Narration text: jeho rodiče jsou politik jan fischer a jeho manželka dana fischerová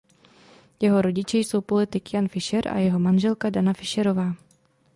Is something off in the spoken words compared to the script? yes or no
no